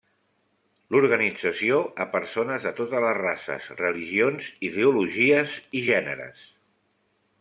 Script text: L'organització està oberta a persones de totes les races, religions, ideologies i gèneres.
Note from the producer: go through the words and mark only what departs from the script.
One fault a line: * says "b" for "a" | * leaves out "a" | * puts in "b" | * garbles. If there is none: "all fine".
* leaves out "està oberta"